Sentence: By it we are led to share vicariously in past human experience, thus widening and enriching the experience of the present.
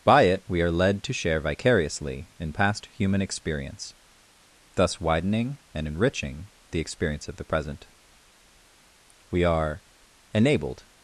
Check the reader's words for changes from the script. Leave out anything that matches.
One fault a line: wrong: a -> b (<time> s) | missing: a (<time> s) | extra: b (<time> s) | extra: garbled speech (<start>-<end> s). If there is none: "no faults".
extra: We are enabled (9.3 s)